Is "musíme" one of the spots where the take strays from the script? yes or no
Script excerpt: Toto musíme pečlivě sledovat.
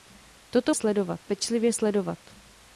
yes